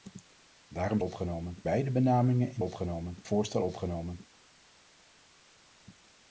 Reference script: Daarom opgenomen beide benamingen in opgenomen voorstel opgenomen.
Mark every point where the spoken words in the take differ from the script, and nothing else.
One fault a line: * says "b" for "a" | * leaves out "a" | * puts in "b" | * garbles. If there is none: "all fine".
all fine